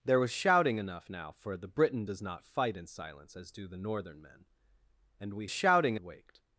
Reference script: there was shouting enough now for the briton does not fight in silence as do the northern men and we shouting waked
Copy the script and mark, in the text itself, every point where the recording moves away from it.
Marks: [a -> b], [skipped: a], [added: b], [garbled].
there was shouting enough now for the briton does not fight in silence as do the northern men and we shouting waked